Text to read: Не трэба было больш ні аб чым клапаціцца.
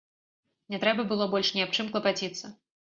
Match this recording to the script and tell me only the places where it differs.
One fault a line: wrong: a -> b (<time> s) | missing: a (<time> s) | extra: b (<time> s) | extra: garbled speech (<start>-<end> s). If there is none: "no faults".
no faults